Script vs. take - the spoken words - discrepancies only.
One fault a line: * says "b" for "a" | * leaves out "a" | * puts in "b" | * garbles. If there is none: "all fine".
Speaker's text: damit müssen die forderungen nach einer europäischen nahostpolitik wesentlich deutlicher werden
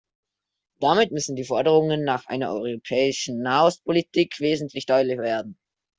all fine